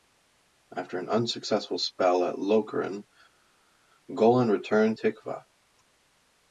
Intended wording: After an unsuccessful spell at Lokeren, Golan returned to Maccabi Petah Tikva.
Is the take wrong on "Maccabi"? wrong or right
wrong